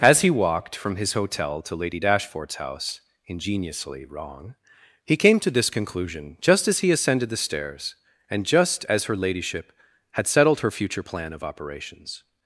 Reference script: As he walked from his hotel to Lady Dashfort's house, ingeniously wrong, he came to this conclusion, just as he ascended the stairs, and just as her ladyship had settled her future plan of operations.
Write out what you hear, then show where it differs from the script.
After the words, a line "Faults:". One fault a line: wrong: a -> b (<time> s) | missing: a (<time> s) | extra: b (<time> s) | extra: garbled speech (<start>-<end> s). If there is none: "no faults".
As he walked from his hotel to Lady Dashfort's house, ingeniously wrong, he came to this conclusion, just as he ascended the stairs, and just as her ladyship had settled her future plan of operations.
Faults:
no faults